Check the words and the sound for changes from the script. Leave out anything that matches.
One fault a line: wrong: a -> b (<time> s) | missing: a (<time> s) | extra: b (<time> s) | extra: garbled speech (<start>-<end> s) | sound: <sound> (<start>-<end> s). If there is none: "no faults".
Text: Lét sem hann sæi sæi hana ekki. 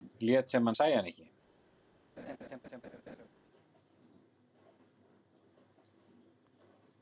missing: sæi (0.9 s)
sound: laugh (2.2-3.3 s)